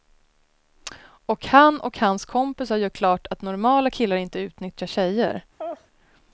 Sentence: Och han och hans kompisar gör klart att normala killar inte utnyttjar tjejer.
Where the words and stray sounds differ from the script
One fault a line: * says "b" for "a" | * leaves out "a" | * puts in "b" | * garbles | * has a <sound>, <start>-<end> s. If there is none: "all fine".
* has a laugh, 5.6-5.9 s